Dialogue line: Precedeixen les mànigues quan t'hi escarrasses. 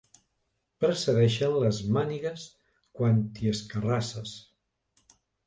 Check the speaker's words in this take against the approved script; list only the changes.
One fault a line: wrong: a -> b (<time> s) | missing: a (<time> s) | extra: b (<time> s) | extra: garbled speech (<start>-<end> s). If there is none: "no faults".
no faults